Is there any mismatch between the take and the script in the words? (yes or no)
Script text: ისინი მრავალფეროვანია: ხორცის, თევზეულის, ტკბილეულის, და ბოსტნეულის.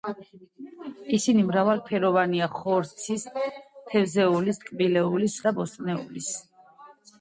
no